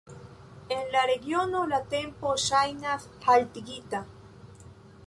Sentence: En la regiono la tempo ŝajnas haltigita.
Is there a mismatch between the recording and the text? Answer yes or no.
no